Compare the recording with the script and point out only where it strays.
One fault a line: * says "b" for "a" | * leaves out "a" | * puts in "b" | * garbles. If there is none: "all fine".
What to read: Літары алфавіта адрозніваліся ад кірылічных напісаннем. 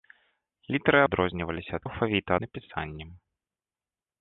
* leaves out "алфавіта"
* says "алфавіта" for "кірылічных"